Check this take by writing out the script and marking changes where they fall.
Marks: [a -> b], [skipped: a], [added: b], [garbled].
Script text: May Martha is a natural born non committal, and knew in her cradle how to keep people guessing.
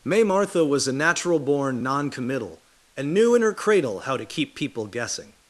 May Martha [is -> was] a natural born non committal, and knew in her cradle how to keep people guessing.